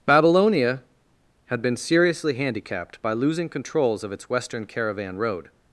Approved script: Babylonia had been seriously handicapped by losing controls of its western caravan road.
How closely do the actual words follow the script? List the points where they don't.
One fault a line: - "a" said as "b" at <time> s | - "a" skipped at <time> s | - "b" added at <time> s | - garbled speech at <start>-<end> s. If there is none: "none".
none